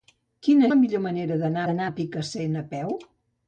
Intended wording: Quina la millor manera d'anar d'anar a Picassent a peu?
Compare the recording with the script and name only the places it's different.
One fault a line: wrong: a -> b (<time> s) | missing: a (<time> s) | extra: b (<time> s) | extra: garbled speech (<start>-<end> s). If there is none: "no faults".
no faults